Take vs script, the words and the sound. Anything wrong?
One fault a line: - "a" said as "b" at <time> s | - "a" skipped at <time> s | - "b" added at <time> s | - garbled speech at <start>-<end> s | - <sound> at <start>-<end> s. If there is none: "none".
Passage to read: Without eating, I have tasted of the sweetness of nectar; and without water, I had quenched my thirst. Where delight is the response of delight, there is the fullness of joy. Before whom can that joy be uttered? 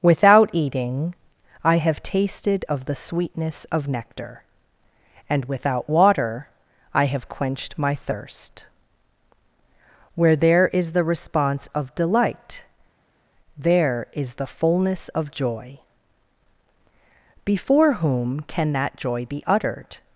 - "had" said as "have" at 7.1 s
- "delight" said as "there" at 10.4 s